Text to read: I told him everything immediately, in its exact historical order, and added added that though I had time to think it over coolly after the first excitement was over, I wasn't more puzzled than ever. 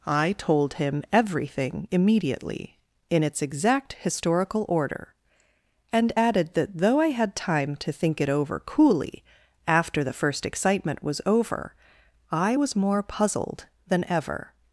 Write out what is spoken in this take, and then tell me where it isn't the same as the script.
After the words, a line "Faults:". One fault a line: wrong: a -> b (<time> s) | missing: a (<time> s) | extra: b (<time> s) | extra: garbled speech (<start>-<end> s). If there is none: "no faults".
I told him everything immediately, in its exact historical order, and added that though I had time to think it over coolly after the first excitement was over, I was more puzzled than ever.
Faults:
missing: added (6.5 s)
wrong: wasn't -> was (12.5 s)